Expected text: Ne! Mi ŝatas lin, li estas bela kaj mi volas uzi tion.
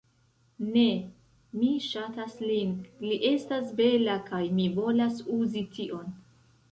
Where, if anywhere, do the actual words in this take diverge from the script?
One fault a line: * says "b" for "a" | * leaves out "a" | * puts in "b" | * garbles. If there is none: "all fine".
all fine